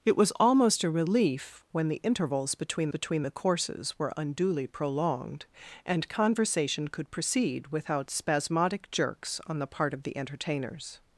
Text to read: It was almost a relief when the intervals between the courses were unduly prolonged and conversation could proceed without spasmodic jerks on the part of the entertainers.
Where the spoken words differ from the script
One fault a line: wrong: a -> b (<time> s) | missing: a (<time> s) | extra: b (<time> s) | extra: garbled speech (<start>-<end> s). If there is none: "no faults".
extra: between (2.9 s)